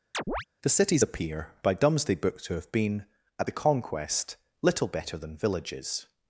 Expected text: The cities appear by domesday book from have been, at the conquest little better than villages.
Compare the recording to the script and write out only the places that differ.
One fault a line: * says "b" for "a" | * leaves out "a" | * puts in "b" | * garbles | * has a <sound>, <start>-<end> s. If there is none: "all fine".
* has a chirp, 0.1-0.4 s
* says "to" for "from"